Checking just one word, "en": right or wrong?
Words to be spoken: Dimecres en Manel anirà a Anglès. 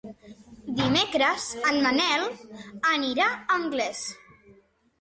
right